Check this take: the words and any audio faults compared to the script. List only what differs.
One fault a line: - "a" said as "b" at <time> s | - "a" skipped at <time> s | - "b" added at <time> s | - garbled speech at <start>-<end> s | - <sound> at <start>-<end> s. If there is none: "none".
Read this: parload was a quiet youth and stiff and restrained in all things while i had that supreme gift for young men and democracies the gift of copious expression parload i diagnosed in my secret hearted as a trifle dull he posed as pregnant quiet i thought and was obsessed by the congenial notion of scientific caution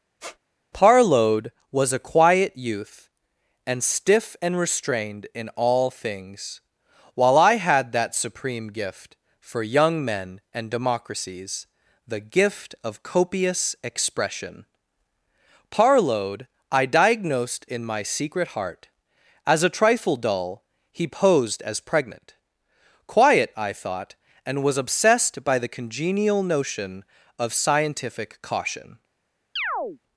- squeak at 0.2-0.4 s
- "hearted" said as "heart" at 18.5 s
- chirp at 29.6-30.0 s